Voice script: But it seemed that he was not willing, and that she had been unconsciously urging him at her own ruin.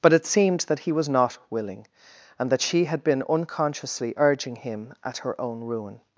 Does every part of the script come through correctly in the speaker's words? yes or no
yes